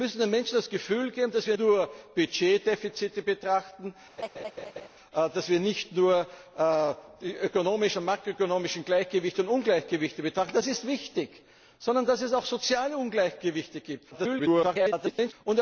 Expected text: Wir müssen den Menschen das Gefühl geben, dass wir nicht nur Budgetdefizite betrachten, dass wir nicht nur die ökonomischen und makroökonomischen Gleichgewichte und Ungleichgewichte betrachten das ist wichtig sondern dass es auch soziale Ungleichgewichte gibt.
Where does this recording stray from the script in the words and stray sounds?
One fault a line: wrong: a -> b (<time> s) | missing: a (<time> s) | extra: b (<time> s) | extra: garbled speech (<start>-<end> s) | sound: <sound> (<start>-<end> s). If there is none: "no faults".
missing: nicht (1.6 s)
sound: laugh (4.2-4.9 s)
extra: garbled speech (14.1-15.3 s)